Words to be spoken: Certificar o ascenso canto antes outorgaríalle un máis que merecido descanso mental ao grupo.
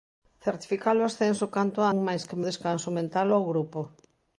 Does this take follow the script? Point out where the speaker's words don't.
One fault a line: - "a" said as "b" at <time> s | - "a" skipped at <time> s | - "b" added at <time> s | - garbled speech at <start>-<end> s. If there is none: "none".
- "antes outorgaríalle" skipped at 1.8 s
- "merecido" skipped at 2.4 s